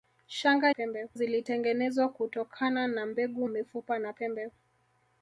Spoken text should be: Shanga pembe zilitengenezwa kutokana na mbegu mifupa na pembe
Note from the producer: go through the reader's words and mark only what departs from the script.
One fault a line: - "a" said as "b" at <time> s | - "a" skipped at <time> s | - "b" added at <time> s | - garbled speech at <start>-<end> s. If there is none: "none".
none